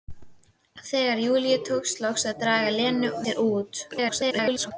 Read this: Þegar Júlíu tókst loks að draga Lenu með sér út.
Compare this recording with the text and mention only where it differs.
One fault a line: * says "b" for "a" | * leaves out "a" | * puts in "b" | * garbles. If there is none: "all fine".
* leaves out "með"
* garbles